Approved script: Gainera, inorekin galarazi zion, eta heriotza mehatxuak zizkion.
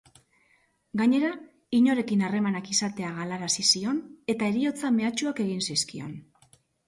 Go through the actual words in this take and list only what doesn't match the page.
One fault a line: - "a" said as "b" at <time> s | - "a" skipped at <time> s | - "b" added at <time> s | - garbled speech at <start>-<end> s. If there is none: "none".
- "harremanak izatea" added at 2.3 s
- "egin" added at 5.5 s